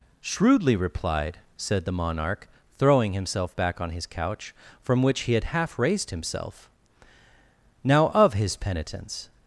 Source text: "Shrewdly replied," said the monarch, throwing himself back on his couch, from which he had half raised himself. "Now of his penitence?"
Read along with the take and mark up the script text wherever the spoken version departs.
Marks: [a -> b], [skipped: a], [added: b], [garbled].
"Shrewdly replied," said the monarch, throwing himself back on his couch, from which he had half raised himself. "Now of his penitence?"